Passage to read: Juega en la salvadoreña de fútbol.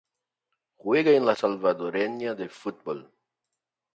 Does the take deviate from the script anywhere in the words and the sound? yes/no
no